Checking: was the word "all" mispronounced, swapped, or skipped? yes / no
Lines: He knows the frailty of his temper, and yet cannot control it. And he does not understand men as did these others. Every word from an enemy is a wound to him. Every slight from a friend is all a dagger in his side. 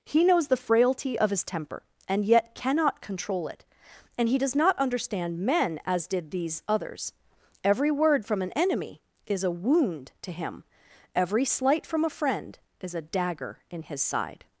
yes